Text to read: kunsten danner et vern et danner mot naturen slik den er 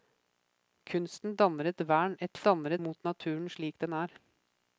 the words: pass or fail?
pass